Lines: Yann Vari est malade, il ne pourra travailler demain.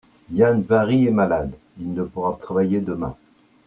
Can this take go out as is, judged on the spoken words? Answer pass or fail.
pass